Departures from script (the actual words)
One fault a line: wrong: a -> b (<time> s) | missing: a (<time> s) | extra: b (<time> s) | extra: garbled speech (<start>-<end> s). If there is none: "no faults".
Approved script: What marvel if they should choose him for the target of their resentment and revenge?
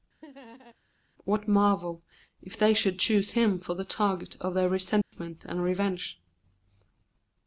no faults